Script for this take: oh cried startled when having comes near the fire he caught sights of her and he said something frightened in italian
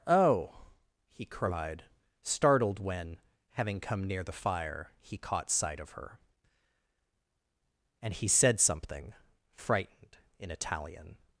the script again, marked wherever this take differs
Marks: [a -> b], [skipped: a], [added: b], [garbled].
oh [added: he] cried startled when having [comes -> come] near the fire he caught [sights -> sight] of her and he said something frightened in italian